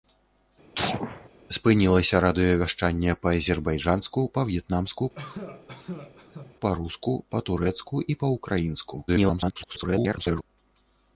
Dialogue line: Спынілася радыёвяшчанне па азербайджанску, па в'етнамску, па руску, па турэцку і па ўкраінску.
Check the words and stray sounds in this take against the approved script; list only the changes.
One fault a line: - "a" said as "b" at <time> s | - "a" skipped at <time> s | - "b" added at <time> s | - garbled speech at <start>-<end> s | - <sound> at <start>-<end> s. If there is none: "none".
- sneeze at 0.8-1.3 s
- cough at 5.1-6.5 s
- garbled speech at 9.1-10.4 s